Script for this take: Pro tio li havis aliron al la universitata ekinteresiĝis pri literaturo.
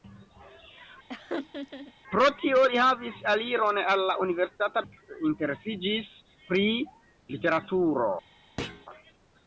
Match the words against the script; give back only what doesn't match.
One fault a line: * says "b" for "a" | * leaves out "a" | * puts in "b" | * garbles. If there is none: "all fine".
all fine